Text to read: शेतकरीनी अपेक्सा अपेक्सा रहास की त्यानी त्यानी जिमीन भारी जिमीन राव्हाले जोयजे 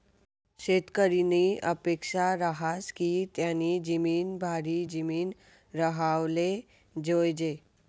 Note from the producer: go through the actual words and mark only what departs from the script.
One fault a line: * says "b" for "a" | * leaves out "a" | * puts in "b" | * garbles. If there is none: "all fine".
* leaves out "अपेक्सा"
* leaves out "त्यानी"